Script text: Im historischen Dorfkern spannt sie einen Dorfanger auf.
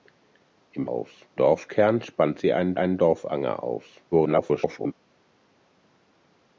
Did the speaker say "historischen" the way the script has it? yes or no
no